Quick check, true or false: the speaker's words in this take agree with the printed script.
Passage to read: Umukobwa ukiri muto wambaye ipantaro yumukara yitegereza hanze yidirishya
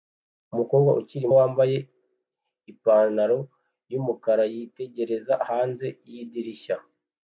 false